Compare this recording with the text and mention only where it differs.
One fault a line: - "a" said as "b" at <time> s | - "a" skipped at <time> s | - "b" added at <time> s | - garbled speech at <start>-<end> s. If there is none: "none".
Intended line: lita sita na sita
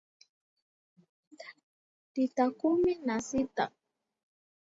- "sita" said as "kumi" at 2.6 s